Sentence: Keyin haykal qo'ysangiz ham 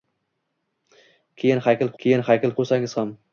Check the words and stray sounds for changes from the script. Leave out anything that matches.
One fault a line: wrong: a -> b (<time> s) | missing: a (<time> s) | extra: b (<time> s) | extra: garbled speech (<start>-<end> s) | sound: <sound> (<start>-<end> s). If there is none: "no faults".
extra: keyin haykal (2.0 s)